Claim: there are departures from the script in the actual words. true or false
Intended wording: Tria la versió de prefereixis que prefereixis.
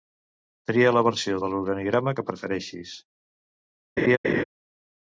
true